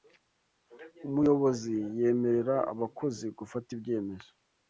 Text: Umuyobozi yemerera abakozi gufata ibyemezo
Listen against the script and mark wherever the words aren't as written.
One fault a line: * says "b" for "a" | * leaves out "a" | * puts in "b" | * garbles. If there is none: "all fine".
all fine